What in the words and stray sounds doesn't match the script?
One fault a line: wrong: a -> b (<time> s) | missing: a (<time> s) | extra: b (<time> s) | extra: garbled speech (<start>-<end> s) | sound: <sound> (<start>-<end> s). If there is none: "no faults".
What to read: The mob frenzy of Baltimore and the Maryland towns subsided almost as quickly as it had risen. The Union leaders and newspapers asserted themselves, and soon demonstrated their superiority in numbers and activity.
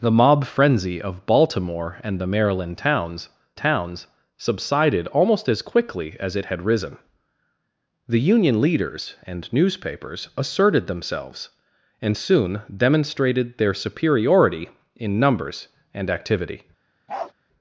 extra: towns (3.5 s)
sound: bark (17.1-17.3 s)